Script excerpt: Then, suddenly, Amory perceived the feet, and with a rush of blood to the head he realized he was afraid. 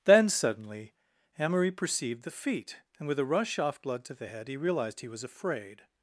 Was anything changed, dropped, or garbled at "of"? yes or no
yes